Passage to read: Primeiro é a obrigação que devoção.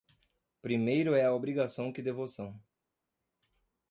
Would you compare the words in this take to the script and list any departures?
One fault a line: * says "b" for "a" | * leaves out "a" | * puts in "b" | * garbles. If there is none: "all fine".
all fine